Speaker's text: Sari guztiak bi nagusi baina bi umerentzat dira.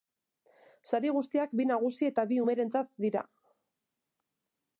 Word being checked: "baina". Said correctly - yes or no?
no